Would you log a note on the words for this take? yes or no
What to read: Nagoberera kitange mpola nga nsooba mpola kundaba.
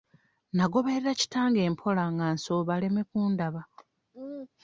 yes